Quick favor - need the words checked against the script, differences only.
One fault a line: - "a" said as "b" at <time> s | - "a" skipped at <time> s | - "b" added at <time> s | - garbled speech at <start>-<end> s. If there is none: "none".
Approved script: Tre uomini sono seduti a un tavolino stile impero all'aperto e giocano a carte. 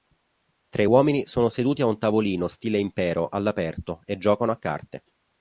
none